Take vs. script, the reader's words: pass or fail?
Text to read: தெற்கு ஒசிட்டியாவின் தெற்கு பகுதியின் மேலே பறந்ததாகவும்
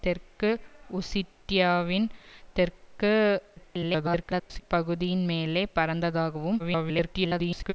fail